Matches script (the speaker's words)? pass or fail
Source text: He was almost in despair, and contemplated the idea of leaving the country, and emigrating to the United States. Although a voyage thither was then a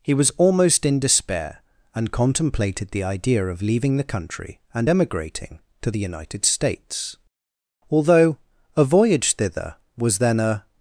pass